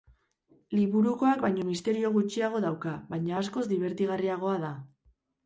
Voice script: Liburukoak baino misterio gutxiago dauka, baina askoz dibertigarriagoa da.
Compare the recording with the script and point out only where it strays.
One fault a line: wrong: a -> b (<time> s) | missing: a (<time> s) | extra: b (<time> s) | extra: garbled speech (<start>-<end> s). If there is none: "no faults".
no faults